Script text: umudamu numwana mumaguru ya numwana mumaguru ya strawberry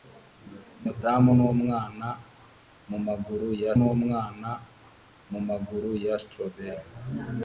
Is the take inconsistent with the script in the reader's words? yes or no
no